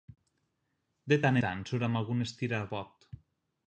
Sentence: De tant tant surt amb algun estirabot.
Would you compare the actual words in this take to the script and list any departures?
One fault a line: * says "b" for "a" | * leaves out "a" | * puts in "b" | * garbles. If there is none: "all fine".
all fine